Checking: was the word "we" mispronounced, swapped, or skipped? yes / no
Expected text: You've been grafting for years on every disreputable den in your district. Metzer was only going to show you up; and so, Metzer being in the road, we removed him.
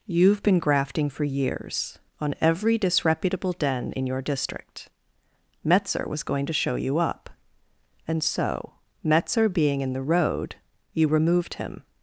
yes